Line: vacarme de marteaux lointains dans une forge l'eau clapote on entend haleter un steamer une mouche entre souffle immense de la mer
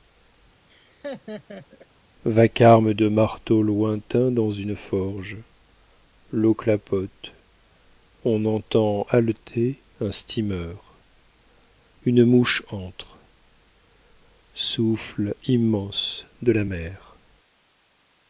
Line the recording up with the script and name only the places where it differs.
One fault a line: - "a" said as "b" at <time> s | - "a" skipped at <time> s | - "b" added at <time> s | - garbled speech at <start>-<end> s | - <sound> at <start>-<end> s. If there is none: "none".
- laugh at 0.7-1.9 s